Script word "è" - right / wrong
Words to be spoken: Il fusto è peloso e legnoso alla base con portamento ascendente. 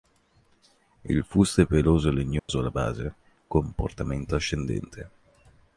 right